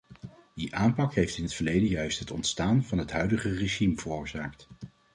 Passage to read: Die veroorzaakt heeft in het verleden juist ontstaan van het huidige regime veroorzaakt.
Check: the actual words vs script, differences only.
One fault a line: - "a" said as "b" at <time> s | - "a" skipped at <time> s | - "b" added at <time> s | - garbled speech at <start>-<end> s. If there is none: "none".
- "veroorzaakt" said as "aanpak" at 0.8 s
- "het" added at 2.2 s